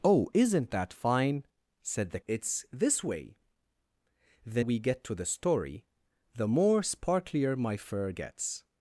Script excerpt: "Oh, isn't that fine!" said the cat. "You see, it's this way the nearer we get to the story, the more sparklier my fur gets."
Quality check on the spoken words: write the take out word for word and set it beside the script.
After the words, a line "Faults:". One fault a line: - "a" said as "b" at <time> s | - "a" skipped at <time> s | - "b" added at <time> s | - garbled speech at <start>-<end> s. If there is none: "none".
"Oh, isn't that fine!" said the it's this way the we get to the story, the more sparklier my fur gets."
Faults:
- "cat You see" skipped at 2.2 s
- "nearer" skipped at 4.6 s